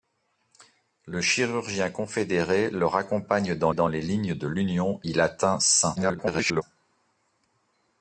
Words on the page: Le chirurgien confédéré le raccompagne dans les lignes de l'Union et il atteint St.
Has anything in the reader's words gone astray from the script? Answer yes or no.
yes